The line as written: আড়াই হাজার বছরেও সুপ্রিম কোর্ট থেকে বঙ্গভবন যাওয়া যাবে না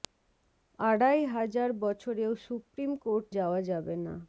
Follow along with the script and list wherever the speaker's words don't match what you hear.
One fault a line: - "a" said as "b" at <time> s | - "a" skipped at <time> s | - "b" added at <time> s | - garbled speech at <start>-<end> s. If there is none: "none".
- "থেকে বঙ্গভবন" skipped at 3.2 s